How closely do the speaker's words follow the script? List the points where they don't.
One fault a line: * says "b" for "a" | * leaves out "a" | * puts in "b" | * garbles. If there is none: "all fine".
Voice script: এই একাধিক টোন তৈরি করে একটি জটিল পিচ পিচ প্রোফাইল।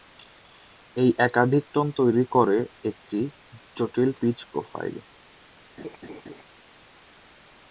* leaves out "পিচ"